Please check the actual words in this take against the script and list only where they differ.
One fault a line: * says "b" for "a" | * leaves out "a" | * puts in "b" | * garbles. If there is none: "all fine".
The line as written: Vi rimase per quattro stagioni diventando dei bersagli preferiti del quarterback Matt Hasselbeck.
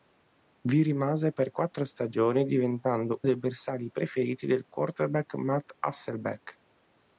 all fine